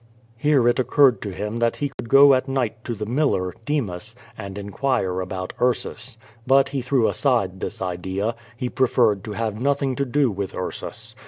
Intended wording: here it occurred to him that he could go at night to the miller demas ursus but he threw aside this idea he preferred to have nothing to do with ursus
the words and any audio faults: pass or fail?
fail